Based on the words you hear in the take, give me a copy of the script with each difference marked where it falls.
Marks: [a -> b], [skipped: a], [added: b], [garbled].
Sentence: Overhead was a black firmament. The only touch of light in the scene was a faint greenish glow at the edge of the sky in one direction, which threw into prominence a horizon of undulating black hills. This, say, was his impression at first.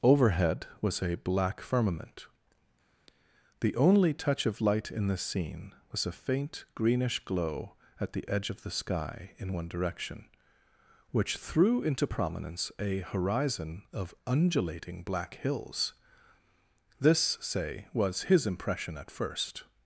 Overhead was a black firmament. The only touch of light in the scene was a faint greenish glow at the edge of the sky in one direction, which threw into prominence a horizon of undulating black hills. This, say, was his impression at first.